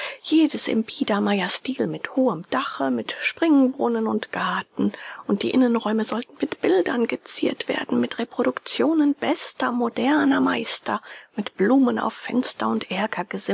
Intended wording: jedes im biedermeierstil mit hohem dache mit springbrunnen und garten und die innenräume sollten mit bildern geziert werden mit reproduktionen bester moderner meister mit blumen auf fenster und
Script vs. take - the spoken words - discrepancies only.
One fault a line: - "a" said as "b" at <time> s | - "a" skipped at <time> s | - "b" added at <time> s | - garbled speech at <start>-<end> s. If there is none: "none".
none